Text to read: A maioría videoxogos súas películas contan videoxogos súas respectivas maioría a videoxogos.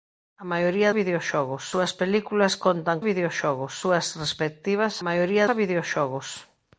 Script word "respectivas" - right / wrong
right